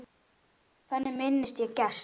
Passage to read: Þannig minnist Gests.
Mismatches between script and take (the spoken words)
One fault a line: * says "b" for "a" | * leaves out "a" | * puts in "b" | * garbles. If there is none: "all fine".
* puts in "ég"